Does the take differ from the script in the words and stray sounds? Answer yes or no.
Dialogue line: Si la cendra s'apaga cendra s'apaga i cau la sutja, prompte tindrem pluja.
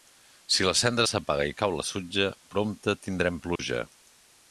yes